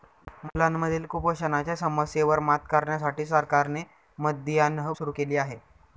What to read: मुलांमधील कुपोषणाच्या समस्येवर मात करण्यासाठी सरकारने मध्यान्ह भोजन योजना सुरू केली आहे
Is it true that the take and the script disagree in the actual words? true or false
true